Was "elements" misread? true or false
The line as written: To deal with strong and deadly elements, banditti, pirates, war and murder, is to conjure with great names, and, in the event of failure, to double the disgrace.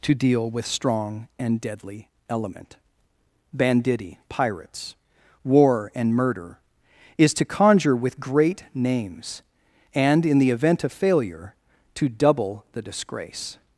true